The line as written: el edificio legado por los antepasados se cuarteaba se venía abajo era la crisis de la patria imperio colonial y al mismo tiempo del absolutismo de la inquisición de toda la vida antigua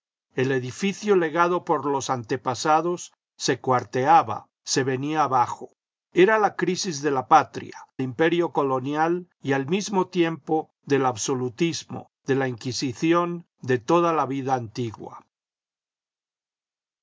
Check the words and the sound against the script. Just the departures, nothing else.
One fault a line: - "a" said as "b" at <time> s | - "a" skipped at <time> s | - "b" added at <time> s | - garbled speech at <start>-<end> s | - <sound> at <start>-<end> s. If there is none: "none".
none